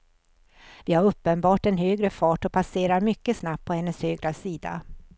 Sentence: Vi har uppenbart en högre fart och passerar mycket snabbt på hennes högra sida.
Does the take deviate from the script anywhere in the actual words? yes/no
no